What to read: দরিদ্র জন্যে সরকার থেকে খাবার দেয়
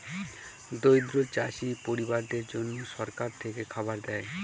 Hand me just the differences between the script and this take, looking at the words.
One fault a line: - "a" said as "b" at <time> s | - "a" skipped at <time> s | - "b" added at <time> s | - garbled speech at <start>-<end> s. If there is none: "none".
- "চাষী পরিবারদের" added at 1.3 s